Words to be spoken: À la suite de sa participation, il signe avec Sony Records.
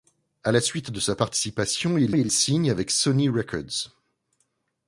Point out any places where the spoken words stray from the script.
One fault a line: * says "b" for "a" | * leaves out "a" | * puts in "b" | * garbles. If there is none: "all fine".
* puts in "il"